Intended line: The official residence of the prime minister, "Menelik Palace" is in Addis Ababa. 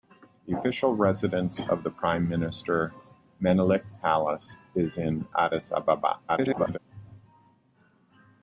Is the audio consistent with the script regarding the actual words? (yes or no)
no